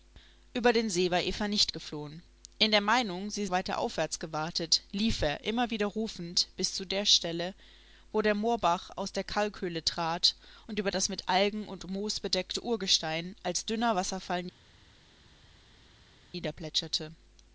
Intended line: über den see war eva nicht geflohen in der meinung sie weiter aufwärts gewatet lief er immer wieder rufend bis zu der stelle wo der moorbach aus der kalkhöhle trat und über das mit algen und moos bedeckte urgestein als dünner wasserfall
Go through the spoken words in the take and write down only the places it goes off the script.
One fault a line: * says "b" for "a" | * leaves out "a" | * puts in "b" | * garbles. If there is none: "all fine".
all fine